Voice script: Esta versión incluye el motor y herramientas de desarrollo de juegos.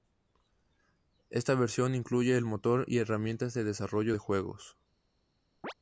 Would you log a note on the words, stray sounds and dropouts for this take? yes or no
yes